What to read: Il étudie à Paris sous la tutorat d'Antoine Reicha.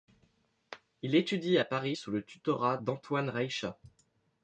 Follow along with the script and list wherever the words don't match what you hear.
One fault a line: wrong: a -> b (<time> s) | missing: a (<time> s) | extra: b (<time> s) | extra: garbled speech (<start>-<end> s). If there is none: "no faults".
wrong: la -> le (2.1 s)